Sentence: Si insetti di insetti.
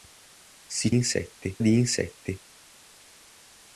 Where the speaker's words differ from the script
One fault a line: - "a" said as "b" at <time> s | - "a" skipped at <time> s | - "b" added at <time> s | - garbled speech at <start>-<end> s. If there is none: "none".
none